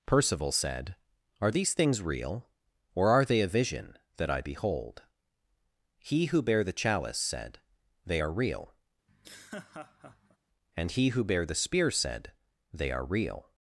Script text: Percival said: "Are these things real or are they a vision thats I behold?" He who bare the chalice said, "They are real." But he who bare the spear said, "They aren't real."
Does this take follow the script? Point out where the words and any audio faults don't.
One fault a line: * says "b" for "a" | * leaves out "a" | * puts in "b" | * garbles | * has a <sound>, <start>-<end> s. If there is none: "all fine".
* says "that" for "thats"
* has a laugh, 9.1-10.4 s
* says "And" for "But"
* says "are" for "aren't"